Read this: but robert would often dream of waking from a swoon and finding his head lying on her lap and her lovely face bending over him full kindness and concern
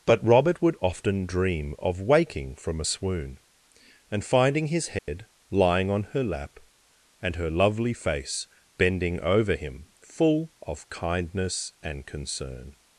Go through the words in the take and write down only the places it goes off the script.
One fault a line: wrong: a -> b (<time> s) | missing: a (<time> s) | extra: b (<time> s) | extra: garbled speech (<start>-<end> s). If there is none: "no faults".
extra: of (10.6 s)